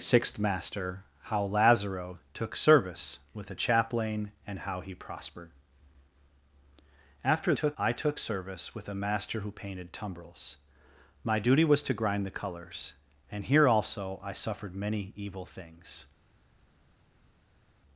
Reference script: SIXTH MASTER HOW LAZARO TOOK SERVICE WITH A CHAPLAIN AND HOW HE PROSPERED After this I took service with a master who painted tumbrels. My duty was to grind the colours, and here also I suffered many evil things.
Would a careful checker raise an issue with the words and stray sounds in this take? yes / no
yes